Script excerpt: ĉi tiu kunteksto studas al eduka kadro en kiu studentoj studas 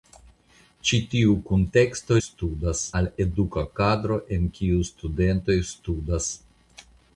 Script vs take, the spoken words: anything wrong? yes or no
no